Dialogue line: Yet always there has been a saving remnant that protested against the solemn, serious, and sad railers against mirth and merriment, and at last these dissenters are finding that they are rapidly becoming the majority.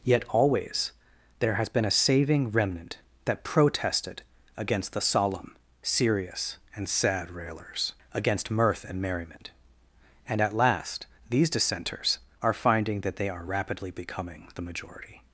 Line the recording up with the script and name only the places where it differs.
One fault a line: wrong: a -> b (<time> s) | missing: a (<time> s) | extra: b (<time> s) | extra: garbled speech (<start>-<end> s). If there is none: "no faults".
no faults